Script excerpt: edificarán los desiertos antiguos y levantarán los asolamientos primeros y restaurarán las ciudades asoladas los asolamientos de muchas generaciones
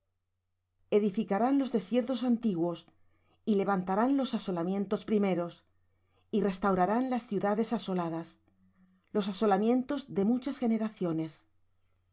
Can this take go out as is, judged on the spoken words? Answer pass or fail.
pass